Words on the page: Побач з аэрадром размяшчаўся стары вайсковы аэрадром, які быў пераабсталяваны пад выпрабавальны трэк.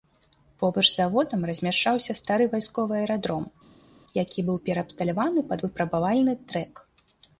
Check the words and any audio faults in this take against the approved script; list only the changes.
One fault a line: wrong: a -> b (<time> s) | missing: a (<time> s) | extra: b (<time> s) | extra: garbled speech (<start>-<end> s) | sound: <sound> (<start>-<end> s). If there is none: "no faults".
wrong: аэрадром -> заводам (1.0 s)